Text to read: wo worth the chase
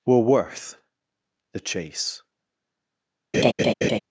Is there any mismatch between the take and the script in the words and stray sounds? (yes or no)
yes